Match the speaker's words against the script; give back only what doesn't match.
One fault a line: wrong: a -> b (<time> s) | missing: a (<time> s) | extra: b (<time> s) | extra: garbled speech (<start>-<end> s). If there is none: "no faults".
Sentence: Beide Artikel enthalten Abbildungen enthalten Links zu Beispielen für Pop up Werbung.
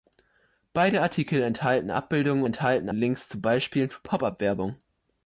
no faults